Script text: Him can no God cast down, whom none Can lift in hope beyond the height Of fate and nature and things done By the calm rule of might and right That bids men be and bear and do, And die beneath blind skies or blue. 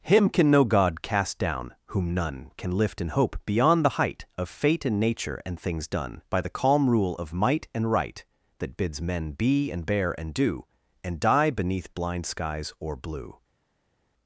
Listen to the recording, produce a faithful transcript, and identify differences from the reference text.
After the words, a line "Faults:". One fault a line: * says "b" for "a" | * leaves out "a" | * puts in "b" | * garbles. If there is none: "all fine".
Him can no God cast down, whom none Can lift in hope beyond the height Of fate and nature and things done By the calm rule of might and right That bids men be and bear and do, And die beneath blind skies or blue.
Faults:
all fine